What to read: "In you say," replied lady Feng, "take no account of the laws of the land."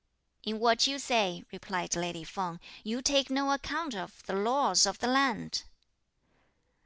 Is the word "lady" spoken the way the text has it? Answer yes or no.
yes